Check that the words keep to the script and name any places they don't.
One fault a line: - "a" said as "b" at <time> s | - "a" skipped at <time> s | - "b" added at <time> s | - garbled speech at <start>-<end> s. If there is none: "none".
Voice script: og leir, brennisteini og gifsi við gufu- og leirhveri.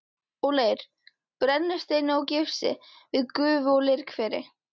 none